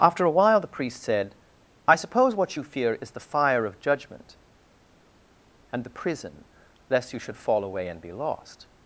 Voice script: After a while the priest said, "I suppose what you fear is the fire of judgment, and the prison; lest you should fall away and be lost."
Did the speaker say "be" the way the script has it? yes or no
yes